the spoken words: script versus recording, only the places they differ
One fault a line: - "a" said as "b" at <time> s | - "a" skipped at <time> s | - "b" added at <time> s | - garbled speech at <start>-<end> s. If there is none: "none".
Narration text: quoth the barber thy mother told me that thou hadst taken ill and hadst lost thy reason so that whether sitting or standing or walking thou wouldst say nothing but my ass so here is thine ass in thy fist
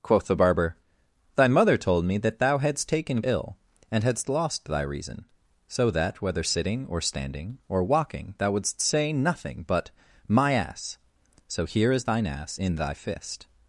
none